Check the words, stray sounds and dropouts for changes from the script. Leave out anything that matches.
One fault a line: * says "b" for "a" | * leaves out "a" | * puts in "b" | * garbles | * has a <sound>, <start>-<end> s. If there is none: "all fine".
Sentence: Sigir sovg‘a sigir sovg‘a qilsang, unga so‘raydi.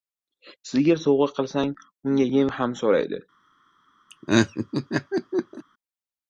* says "qilsang unga yem ham" for "sigir sovg‘a qilsang unga"
* has a laugh, 4.1-5.6 s